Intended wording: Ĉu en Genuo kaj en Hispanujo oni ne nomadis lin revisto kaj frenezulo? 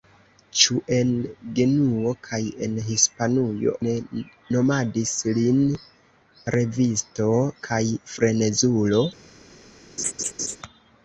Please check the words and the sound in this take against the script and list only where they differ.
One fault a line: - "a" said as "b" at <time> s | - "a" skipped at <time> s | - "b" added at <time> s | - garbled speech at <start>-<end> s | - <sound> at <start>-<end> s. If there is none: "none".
- "oni" skipped at 3.8 s
- laugh at 10.0-10.6 s